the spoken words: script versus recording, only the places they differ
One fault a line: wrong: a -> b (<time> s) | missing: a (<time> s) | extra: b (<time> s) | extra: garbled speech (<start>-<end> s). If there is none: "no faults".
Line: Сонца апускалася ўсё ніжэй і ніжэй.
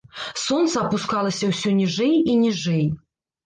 no faults